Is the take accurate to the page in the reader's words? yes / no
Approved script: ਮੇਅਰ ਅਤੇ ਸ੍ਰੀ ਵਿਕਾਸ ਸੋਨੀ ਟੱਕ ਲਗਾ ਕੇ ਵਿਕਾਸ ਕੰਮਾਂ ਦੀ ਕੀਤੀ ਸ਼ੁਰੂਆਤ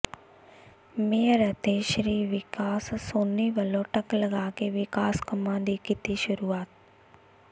no